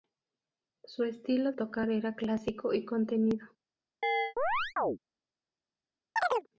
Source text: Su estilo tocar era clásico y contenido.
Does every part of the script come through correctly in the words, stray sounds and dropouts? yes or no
no